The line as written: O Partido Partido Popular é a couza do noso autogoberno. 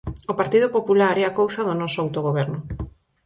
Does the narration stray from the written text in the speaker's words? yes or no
yes